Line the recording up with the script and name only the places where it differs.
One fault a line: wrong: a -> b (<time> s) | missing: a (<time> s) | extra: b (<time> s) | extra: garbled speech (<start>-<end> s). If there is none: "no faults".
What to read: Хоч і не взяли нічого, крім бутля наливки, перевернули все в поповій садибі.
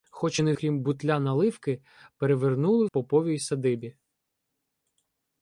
missing: взяли нічого (0.5 s)
missing: все в (2.9 s)